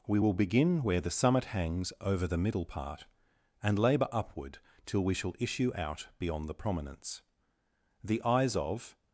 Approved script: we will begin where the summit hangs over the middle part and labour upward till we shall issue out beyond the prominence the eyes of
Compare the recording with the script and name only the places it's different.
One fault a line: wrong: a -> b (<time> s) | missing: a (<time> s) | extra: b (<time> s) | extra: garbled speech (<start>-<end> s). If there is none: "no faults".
no faults